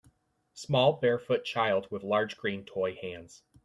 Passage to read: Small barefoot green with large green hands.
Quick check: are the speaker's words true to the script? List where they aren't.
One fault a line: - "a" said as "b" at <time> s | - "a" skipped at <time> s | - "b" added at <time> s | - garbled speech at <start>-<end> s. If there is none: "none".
- "green" said as "child" at 1.4 s
- "toy" added at 2.6 s